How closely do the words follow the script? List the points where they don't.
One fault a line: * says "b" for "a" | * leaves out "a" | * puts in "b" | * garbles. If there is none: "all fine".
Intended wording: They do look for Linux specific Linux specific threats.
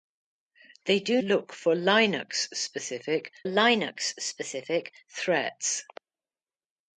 all fine